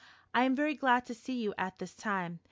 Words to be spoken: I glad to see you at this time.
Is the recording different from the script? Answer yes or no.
yes